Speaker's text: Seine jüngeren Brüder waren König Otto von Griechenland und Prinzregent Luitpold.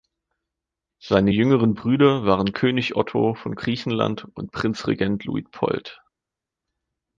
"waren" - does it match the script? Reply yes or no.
yes